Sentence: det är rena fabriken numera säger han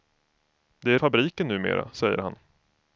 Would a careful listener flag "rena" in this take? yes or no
yes